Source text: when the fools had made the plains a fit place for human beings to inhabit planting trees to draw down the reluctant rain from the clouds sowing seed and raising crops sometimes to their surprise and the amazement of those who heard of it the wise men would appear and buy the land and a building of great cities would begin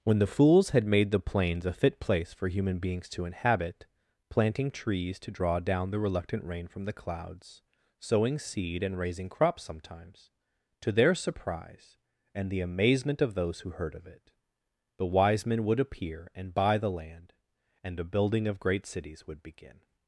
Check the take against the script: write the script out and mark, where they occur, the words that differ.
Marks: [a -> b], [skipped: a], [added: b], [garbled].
when the fools had made the plains a fit place for human beings to inhabit planting trees to draw down the reluctant rain from the clouds sowing seed and raising crops sometimes to their surprise and the amazement of those who heard of it the wise men would appear and buy the land and a building of great cities would begin